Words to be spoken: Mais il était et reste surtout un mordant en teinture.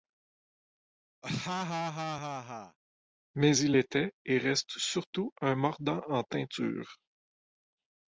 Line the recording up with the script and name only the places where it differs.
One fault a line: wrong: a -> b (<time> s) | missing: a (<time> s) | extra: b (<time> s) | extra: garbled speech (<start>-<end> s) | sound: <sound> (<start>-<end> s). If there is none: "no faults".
sound: laugh (1.2-2.8 s)